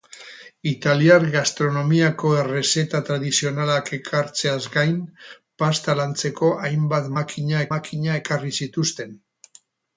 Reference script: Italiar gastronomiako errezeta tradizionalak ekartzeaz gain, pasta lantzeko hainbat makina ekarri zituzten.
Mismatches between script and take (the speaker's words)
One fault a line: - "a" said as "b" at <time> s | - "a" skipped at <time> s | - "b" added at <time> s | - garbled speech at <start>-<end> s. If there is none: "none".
- "makina" added at 7.8 s